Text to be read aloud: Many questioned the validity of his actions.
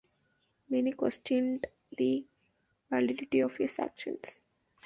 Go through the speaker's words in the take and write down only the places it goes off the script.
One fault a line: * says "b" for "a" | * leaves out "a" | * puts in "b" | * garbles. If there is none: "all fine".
all fine